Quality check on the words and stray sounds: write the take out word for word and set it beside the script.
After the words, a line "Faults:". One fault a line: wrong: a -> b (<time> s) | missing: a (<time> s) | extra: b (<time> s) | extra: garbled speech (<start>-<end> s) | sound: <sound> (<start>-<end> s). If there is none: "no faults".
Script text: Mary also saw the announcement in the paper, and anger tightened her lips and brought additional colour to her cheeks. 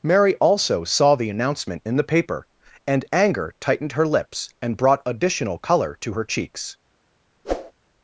Mary also saw the announcement in the paper, and anger tightened her lips and brought additional colour to her cheeks.
Faults:
sound: whoosh (7.4-7.7 s)